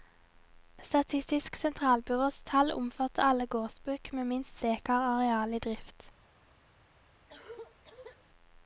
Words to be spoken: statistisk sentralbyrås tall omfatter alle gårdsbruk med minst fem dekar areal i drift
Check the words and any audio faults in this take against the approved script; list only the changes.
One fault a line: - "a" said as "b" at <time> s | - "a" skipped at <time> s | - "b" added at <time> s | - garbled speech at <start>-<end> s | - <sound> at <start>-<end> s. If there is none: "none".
- "fem" skipped at 4.6 s
- cough at 7.3-8.2 s